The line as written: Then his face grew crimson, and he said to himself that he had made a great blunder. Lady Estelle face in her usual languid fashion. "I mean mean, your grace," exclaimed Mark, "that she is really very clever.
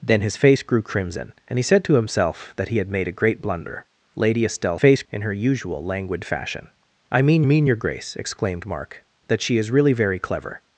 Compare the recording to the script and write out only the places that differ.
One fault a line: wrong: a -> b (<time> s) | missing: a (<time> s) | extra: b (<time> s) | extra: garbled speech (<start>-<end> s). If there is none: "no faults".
no faults